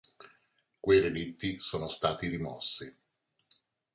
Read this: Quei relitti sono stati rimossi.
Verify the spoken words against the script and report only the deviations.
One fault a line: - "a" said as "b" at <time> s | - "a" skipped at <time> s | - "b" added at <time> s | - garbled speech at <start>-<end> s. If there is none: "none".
none